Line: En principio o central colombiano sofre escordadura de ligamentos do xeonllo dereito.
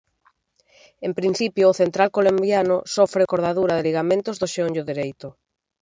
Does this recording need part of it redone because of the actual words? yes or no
no